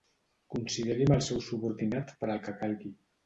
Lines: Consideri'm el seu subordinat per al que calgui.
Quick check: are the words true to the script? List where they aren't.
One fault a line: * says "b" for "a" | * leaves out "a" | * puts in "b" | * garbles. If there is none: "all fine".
all fine